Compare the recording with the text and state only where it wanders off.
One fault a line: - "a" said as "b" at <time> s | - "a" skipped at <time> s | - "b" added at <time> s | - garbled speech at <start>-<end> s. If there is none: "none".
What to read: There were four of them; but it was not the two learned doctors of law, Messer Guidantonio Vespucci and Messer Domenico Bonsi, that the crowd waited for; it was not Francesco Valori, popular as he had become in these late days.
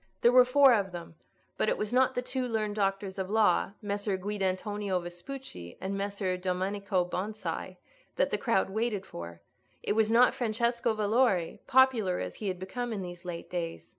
none